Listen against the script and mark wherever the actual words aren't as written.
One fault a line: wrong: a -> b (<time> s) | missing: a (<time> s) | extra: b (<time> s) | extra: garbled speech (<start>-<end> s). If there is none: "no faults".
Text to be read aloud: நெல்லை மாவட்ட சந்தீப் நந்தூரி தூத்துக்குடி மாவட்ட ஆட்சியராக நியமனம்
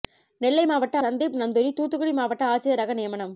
no faults